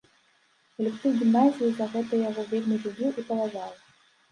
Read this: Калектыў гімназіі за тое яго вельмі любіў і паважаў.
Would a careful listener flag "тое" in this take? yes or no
yes